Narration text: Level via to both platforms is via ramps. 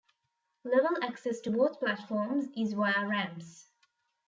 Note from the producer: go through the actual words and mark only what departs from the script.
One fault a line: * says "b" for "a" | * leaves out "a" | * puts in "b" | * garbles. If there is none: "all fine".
* says "access" for "via"